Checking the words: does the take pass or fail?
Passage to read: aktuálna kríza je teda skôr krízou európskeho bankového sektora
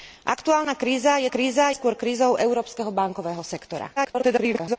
fail